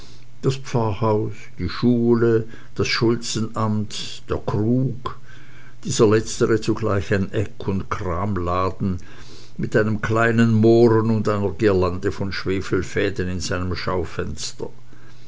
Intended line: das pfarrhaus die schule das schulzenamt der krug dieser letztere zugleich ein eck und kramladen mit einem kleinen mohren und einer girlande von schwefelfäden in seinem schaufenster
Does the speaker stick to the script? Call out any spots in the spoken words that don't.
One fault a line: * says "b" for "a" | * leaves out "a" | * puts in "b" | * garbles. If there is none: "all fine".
all fine